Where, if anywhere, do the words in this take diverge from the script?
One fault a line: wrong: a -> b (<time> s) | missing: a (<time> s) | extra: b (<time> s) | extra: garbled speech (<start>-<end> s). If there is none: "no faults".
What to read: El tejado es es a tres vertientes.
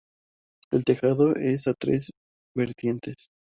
missing: es (1.7 s)